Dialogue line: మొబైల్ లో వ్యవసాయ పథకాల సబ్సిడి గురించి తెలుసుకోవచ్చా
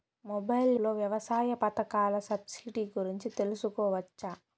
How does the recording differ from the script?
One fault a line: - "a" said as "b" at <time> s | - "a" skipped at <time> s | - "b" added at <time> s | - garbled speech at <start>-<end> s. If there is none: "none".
none